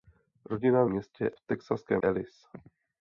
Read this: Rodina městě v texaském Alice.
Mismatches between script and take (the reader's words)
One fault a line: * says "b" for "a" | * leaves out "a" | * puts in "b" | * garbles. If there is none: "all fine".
all fine